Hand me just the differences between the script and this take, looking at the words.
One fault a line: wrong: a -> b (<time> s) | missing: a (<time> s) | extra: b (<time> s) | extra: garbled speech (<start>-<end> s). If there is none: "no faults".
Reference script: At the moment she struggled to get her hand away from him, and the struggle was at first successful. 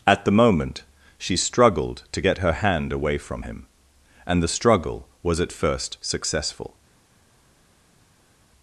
no faults